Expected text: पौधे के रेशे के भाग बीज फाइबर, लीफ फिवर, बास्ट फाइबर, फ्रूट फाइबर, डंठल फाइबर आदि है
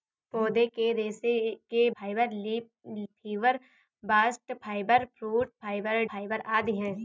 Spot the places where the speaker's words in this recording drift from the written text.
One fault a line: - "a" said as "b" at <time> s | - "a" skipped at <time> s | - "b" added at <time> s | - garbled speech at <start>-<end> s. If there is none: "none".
- "भाग बीज" skipped at 1.9 s
- "डंठल" skipped at 6.0 s